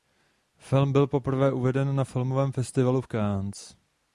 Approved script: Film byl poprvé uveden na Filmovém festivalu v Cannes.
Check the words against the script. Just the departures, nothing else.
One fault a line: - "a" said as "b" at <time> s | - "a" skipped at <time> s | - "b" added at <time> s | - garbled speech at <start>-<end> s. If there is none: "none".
none